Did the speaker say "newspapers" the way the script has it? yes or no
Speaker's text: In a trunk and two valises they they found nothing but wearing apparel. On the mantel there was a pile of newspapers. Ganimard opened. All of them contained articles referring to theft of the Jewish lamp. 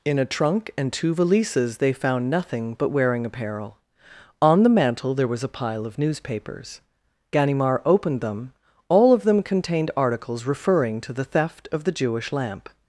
yes